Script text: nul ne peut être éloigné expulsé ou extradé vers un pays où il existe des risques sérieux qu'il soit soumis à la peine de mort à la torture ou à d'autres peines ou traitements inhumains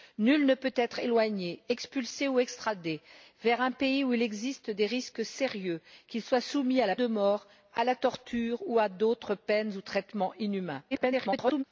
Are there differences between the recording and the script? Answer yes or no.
yes